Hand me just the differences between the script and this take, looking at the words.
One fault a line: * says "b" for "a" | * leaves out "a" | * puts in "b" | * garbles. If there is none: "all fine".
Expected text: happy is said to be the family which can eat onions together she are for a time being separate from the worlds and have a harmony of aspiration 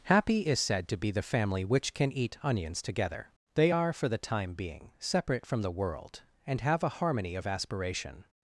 * says "they" for "she"
* says "the" for "a"
* says "world" for "worlds"